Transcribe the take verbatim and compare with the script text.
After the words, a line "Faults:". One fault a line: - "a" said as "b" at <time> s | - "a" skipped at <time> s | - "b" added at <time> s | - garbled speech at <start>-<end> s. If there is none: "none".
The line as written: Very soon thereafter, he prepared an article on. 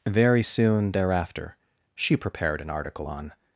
Very soon thereafter, she prepared an article on.
Faults:
- "he" said as "she" at 1.9 s